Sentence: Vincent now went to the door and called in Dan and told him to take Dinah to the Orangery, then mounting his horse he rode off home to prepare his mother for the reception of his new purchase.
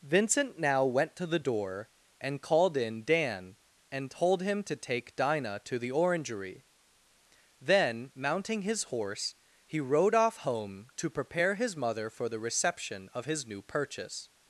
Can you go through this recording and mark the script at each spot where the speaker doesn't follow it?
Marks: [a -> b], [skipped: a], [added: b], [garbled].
Vincent now went to the door and called in Dan and told him to take Dinah to the Orangery, then mounting his horse he rode off home to prepare his mother for the reception of his new purchase.